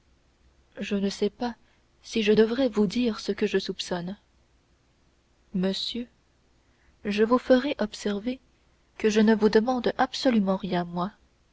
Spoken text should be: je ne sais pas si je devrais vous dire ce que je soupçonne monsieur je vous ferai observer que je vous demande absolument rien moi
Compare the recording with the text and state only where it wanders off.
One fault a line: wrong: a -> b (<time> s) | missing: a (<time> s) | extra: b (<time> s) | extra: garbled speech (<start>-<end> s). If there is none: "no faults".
extra: ne (9.2 s)